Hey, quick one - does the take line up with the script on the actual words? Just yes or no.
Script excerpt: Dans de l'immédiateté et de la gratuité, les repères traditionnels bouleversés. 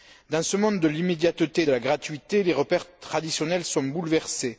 no